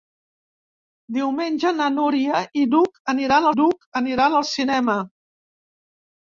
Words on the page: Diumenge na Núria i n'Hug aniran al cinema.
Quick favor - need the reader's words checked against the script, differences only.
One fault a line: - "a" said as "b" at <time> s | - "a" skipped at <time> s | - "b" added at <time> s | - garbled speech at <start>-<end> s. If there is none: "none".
- "n'Hug aniran" added at 3.5 s